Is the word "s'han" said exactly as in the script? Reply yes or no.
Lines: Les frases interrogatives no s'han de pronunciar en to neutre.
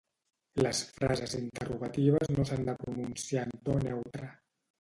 yes